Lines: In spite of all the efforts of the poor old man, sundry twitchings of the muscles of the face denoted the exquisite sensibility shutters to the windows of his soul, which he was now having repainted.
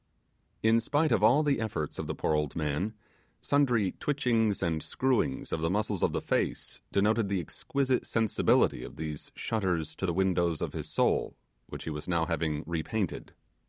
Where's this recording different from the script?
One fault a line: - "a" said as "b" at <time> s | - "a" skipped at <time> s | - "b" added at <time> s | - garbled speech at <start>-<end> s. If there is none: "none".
- "and screwings" added at 4.6 s
- "of these" added at 8.8 s